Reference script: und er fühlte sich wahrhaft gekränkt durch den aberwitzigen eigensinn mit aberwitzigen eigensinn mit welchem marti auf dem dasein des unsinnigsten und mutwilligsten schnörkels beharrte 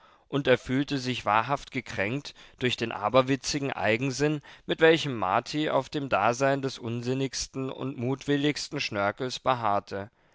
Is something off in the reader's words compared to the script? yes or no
yes